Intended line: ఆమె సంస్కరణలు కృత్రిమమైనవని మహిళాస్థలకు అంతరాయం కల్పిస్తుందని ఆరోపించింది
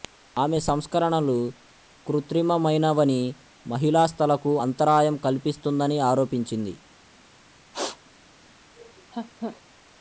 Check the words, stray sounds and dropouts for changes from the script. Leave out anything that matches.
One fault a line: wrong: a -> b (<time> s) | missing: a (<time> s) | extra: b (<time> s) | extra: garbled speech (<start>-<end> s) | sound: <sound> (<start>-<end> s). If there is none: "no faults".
sound: sneeze (7.7-8.0 s)
sound: laugh (8.8-9.6 s)